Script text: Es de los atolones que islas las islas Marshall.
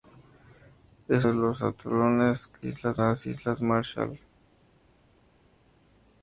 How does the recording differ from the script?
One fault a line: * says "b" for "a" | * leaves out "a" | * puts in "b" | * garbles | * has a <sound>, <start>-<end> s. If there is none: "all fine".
all fine